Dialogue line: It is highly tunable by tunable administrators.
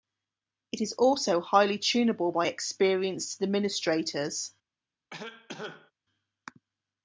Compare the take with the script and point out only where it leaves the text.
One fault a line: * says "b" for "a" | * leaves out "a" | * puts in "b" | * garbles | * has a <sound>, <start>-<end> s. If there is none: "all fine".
* puts in "also"
* says "experienced" for "tunable"
* has a cough, 5.1-5.9 s